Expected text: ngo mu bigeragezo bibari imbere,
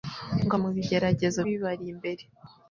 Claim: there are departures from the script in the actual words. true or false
false